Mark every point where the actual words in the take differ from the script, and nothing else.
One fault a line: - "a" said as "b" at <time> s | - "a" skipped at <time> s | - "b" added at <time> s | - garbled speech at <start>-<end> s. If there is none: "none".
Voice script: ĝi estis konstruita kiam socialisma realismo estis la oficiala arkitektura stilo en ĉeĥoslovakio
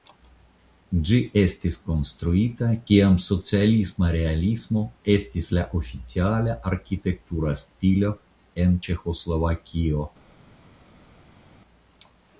none